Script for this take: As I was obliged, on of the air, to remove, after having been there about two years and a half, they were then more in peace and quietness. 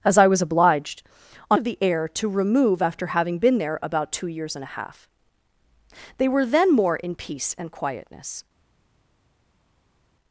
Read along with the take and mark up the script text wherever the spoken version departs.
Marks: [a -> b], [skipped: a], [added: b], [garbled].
As I was obliged, on of the air, to remove, after having been there about two years and a half, they were then more in peace and quietness.